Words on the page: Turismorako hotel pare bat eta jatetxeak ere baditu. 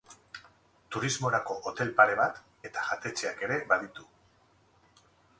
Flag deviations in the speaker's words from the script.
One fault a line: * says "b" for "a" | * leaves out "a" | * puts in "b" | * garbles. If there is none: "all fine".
all fine